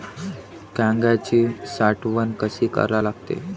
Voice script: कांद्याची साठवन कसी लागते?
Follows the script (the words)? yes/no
no